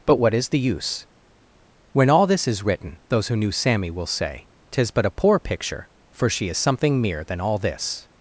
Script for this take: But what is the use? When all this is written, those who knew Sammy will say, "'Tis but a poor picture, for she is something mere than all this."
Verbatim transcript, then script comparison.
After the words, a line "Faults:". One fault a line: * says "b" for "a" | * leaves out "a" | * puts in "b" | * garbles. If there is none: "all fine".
But what is the use? When all this is written, those who knew Sammy will say, "'Tis but a poor picture, for she is something mere than all this."
Faults:
all fine